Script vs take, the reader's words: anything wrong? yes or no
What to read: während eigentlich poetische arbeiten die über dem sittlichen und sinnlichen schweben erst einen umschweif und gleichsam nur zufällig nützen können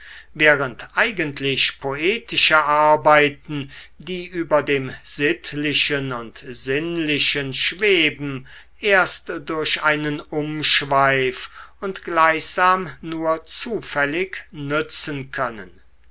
yes